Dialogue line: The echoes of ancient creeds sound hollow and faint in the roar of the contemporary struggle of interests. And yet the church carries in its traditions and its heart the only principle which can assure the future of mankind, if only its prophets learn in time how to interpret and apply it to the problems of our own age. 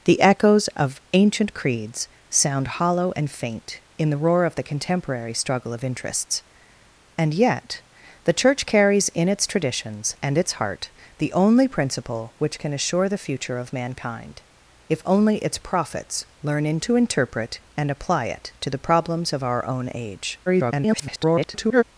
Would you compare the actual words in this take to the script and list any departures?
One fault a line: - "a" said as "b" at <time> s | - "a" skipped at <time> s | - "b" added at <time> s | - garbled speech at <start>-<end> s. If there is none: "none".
- "time how" skipped at 16.8 s
- garbled speech at 20.5-21.8 s